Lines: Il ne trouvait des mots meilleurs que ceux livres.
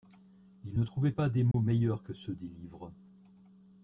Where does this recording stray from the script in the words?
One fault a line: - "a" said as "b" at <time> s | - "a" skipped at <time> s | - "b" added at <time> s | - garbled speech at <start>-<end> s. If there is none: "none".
- "pas" added at 1.1 s
- "des" added at 2.3 s